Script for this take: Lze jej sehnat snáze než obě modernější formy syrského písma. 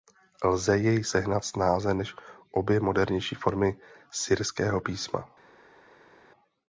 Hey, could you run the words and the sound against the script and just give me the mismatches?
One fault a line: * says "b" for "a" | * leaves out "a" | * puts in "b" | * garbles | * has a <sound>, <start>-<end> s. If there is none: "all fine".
all fine